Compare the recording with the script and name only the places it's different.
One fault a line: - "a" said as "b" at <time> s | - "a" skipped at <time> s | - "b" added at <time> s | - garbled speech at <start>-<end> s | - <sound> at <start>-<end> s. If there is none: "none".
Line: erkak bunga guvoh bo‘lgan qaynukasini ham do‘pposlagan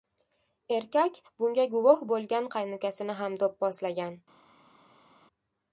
none